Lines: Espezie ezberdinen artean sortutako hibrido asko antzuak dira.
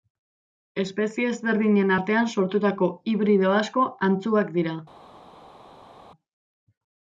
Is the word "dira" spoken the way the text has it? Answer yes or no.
yes